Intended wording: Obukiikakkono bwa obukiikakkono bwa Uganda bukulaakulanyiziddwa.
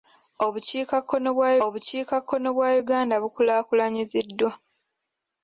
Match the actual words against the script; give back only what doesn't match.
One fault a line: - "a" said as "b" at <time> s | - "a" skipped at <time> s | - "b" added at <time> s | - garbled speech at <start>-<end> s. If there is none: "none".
none